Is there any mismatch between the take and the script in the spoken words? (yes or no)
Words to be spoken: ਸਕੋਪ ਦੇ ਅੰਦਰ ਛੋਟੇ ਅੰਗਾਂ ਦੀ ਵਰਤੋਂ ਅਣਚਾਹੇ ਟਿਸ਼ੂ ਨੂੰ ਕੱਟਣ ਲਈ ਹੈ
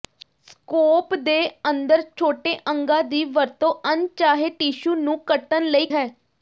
no